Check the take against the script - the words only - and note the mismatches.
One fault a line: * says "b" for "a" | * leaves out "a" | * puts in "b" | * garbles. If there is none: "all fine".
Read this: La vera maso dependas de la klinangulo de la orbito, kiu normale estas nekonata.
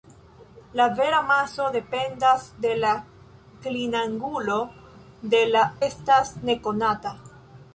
* leaves out "orbito kiu normale"